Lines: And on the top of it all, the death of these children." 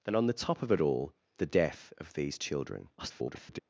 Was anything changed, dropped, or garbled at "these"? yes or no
no